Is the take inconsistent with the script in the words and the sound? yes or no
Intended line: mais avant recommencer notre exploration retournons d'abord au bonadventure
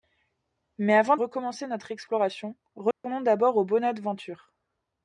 yes